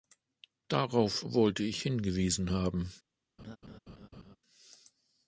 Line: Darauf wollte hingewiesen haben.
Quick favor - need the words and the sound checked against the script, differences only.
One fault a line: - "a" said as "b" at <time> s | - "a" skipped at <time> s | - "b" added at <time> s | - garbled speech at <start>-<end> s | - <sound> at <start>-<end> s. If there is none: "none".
- "ich" added at 1.6 s
- laugh at 3.4-4.4 s